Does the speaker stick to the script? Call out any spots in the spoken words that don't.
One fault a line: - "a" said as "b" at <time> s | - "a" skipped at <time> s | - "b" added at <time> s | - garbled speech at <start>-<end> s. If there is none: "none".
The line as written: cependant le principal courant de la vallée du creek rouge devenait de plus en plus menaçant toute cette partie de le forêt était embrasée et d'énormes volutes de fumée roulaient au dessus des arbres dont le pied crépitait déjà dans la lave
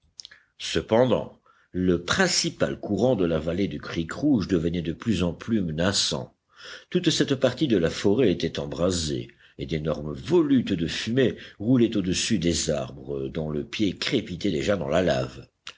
- "le" said as "la" at 7.8 s